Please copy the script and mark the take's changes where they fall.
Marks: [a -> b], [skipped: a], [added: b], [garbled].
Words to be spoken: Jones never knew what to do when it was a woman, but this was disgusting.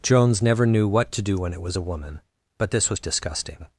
Jones never knew what to do when it was a woman, but this was disgusting.